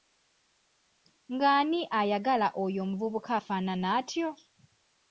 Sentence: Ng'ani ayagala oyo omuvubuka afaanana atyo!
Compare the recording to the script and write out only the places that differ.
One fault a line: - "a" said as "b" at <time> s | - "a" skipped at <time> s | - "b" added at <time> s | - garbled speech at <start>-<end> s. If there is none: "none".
none